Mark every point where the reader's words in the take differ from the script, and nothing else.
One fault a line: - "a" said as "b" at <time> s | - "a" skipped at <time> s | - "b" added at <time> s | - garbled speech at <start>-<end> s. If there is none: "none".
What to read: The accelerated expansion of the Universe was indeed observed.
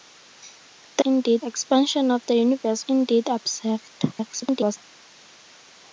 - "accelerated" said as "indeed" at 1.0 s
- "was" skipped at 2.8 s
- garbled speech at 4.1-4.8 s